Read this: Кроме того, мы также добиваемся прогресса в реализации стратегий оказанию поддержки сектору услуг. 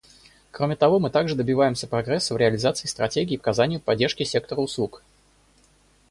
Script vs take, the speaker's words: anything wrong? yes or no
no